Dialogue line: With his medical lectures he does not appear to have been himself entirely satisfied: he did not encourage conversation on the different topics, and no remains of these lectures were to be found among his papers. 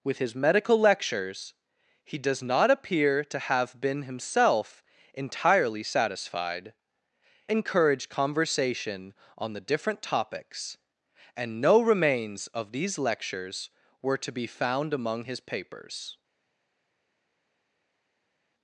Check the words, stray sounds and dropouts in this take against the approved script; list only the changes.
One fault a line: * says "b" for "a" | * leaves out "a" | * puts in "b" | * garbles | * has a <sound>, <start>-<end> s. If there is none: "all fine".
* leaves out "he did not"